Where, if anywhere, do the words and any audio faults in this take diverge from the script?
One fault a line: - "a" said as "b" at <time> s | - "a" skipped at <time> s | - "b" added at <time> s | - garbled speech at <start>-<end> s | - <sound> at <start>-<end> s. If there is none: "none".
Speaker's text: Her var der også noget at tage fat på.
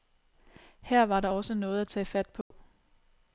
- dropout at 2.4-2.5 s